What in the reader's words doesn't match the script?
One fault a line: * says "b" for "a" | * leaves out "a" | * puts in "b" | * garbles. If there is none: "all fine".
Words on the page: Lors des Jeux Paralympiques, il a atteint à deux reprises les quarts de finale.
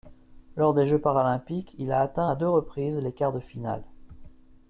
all fine